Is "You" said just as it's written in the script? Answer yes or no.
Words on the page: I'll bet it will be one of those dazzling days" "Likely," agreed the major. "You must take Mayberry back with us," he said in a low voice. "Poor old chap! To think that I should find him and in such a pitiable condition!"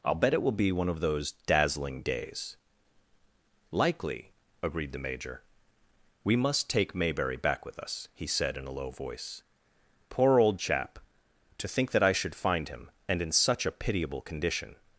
no